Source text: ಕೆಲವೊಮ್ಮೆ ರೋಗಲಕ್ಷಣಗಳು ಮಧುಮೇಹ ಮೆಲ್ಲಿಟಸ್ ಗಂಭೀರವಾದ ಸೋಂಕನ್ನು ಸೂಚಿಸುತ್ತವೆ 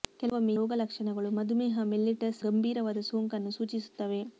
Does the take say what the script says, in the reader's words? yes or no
yes